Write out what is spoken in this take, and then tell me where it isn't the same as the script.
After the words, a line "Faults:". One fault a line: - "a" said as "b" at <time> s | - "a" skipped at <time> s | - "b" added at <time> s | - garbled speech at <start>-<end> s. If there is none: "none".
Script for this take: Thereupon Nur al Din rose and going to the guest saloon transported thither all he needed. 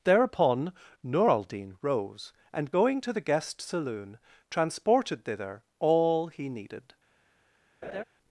Thereupon Nur al Din rose and going to the guest saloon transported thither all he needed.
Faults:
none